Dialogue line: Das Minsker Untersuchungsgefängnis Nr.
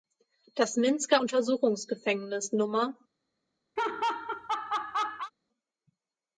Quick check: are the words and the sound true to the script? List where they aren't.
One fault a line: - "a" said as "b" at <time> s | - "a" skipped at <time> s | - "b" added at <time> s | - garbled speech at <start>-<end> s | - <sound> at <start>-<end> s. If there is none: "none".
- laugh at 3.8-5.3 s